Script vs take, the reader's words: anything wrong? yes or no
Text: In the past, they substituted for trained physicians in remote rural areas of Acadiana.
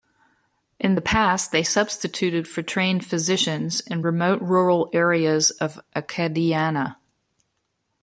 no